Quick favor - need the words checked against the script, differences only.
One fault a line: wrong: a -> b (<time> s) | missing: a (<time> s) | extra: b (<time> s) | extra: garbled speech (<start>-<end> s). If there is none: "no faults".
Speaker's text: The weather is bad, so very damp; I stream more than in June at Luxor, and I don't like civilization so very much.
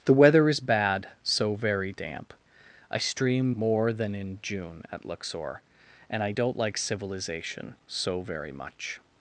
no faults